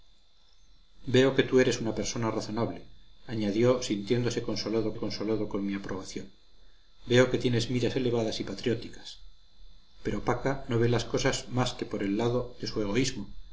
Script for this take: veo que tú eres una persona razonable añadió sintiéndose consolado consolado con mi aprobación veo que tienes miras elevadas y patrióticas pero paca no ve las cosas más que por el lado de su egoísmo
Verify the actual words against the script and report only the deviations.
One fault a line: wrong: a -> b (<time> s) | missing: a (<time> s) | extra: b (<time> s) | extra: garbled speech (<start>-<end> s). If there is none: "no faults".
no faults